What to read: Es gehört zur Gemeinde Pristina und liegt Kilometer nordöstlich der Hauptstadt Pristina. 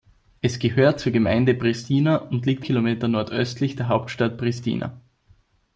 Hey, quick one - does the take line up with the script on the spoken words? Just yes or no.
yes